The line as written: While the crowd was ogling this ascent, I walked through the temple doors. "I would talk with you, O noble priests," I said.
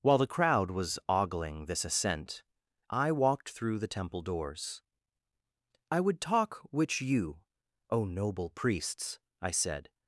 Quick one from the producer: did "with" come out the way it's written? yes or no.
no